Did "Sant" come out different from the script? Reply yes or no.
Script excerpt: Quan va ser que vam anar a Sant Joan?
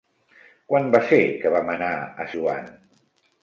yes